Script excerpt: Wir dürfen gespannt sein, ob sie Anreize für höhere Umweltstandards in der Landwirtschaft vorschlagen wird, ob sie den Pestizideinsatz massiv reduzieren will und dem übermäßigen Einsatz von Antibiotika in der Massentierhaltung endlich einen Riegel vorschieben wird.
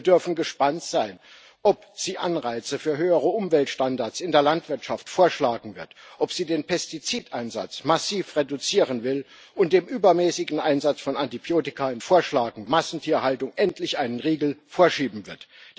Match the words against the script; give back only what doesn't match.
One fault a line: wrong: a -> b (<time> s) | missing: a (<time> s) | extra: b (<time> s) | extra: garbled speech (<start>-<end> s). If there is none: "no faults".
wrong: der -> vorschlagen (12.0 s)